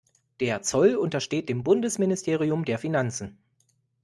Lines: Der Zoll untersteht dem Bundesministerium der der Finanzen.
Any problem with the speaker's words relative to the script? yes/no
yes